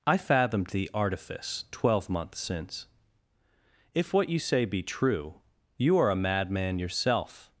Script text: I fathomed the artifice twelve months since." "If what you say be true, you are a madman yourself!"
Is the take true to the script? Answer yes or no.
yes